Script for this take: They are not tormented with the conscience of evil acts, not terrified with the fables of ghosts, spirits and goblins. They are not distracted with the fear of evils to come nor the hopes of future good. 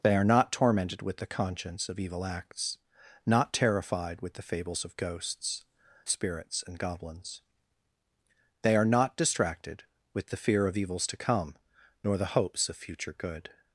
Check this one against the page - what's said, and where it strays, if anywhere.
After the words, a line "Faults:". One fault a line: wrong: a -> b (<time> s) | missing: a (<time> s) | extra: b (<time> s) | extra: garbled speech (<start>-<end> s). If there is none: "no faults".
They are not tormented with the conscience of evil acts, not terrified with the fables of ghosts, spirits and goblins. They are not distracted with the fear of evils to come nor the hopes of future good.
Faults:
no faults